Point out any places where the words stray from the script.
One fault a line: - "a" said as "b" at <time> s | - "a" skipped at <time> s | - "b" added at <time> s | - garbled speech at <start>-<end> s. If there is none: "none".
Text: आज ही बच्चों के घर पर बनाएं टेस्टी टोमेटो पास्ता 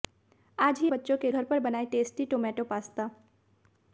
none